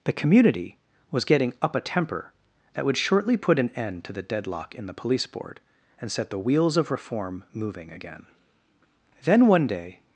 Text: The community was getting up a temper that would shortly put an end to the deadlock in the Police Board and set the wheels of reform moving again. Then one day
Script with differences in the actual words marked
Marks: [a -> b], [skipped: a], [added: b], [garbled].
The community was getting up a temper that would shortly put an end to the deadlock in the Police Board and set the wheels of reform moving again. Then one day